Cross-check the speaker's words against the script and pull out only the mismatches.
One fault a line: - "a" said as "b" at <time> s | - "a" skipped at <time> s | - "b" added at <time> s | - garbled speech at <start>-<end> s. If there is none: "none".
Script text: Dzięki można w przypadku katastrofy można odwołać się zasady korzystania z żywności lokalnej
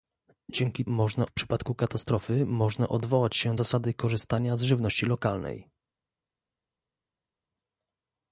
none